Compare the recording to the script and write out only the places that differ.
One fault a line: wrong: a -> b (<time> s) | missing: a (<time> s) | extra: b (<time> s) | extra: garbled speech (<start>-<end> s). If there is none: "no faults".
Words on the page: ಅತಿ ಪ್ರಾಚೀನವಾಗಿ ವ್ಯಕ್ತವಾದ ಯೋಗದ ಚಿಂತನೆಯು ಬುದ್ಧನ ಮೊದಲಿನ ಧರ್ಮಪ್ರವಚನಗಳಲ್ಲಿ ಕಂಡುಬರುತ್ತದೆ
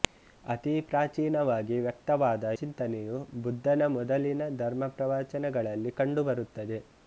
missing: ಯೋಗದ (2.4 s)